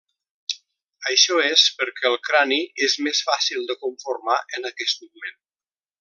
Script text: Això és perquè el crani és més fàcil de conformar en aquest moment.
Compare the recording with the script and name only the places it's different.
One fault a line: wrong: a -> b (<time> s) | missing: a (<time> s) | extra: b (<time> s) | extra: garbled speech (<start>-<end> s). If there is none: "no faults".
no faults